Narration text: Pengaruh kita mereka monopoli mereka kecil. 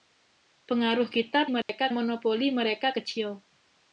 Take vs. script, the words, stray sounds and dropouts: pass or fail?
fail